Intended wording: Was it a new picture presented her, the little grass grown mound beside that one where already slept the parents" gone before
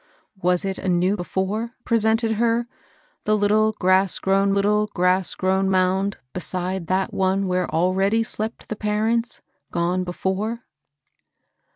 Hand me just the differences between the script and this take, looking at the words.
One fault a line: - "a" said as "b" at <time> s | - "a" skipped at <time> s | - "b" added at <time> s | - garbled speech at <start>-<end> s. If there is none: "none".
- "picture" said as "before" at 1.2 s
- "little grass grown" added at 4.5 s